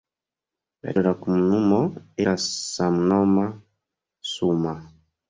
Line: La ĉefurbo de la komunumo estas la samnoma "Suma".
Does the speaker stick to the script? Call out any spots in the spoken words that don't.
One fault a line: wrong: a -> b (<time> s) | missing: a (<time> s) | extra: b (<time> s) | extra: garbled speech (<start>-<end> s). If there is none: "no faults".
missing: ĉefurbo (0.9 s)
missing: estas (1.8 s)